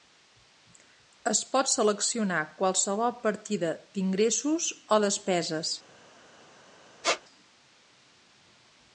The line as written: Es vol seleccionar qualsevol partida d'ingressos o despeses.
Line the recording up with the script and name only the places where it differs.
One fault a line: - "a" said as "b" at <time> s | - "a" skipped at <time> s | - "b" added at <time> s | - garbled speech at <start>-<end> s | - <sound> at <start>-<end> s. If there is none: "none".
- "vol" said as "pot" at 1.5 s
- squeak at 7.0-7.2 s